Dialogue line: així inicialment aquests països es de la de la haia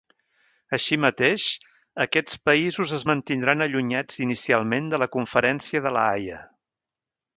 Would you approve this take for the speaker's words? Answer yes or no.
no